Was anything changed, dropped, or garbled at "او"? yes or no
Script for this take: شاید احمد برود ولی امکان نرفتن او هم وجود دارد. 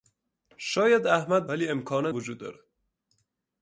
yes